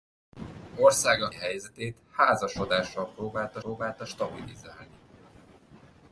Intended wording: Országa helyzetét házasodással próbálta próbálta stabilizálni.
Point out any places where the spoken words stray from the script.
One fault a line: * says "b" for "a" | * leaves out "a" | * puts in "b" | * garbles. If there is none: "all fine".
all fine